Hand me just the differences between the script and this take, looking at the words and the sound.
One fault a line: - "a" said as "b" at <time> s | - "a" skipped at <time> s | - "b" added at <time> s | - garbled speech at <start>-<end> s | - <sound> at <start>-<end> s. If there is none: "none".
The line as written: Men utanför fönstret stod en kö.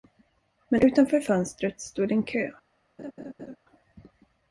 - laugh at 3.0-3.6 s